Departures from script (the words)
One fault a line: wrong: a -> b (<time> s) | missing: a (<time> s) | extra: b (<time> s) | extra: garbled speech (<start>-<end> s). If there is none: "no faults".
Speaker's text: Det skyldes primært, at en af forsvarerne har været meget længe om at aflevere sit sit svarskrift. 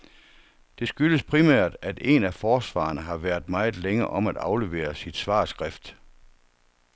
missing: sit (5.2 s)